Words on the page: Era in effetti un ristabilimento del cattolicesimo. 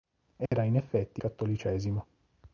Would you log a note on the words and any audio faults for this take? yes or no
yes